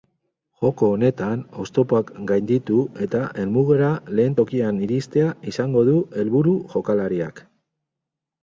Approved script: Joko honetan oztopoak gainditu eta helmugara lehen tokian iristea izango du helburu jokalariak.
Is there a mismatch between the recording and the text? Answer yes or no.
no